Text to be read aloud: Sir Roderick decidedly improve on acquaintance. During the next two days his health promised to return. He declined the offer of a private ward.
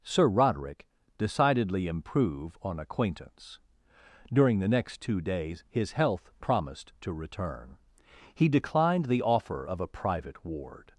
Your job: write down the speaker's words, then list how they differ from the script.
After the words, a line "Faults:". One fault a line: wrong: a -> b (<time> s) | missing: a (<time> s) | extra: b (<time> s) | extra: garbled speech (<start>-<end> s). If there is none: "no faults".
Sir Roderick decidedly improve on acquaintance. During the next two days his health promised to return. He declined the offer of a private ward.
Faults:
no faults